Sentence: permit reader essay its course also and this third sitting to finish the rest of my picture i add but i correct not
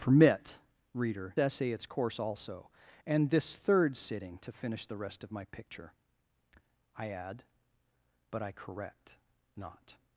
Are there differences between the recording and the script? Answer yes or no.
no